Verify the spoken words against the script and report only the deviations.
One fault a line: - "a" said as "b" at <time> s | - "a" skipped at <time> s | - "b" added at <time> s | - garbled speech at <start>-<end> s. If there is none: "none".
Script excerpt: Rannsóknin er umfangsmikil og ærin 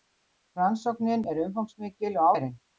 none